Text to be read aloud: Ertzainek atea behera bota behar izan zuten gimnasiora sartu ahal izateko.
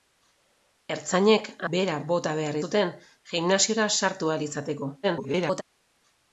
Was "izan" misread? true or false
true